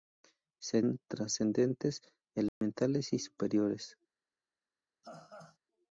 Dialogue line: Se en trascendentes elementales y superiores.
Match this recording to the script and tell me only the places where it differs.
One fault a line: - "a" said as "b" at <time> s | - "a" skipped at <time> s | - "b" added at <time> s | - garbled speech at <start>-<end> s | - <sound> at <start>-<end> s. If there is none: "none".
- dropout at 2.5-2.6 s
- laugh at 5.0-5.6 s